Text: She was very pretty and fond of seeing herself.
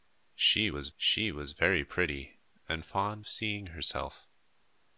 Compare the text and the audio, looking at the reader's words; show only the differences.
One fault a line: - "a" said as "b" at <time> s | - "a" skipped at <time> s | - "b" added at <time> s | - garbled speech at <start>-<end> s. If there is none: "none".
- "she was" added at 0.9 s
- "of" skipped at 3.3 s